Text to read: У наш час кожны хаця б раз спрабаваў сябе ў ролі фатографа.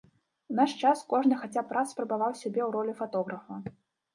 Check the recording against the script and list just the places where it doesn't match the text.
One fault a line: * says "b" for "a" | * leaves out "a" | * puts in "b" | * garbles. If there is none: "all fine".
all fine